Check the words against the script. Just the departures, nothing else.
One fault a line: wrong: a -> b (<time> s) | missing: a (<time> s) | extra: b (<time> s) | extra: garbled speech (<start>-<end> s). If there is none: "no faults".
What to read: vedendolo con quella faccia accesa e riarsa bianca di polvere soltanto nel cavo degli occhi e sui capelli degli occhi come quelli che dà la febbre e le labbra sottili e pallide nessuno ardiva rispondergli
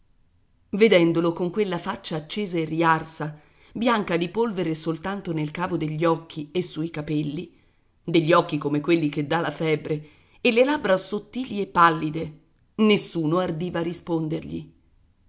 no faults